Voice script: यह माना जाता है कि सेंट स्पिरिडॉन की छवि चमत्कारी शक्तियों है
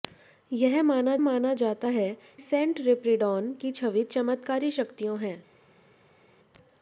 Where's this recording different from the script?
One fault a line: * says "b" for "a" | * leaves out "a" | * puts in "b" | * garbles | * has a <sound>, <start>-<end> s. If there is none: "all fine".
* puts in "माना"
* leaves out "कि"